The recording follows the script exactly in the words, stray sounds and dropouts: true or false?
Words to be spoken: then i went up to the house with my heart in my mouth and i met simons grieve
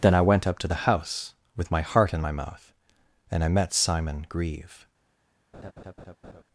false